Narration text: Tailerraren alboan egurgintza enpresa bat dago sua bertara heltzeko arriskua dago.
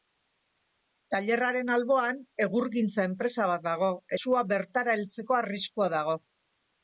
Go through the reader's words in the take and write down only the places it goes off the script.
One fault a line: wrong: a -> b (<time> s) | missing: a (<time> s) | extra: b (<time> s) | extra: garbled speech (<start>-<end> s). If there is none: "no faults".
no faults